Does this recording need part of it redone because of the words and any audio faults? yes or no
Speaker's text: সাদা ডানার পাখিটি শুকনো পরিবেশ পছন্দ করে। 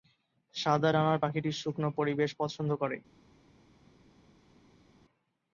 no